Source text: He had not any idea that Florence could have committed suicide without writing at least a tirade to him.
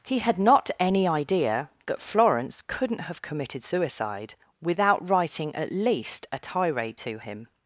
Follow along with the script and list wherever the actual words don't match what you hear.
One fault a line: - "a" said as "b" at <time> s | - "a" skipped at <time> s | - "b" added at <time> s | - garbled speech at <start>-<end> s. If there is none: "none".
- "could" said as "couldn't" at 2.6 s